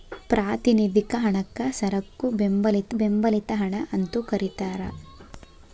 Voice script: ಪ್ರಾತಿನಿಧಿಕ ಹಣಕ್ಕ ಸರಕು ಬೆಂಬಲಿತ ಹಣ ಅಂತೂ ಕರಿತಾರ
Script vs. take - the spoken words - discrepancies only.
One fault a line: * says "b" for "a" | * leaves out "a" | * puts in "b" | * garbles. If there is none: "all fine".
* puts in "ಬೆಂಬಲಿತ"